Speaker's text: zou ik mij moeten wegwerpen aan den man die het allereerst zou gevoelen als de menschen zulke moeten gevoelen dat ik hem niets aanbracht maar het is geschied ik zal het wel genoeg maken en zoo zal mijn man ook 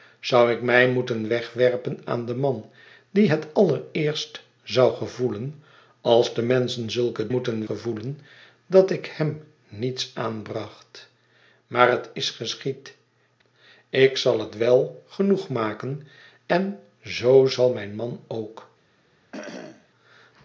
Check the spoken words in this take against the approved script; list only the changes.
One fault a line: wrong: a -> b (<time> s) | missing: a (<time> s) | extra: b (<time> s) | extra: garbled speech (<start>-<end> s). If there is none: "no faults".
no faults